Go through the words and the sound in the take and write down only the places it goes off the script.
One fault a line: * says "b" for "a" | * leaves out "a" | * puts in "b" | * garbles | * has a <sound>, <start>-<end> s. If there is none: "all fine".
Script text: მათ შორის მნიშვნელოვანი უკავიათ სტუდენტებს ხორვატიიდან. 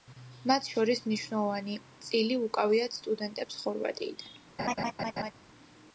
* puts in "წილი"
* has a laugh, 4.6-5.3 s